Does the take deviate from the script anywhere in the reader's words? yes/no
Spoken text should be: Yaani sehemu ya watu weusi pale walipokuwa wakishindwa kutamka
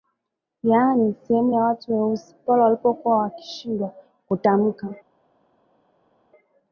no